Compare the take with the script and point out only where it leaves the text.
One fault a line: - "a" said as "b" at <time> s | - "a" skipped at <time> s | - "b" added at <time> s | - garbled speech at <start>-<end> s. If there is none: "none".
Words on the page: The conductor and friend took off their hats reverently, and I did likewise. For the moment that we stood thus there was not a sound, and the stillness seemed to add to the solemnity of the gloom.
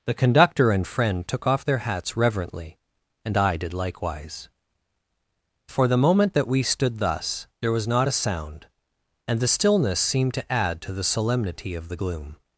none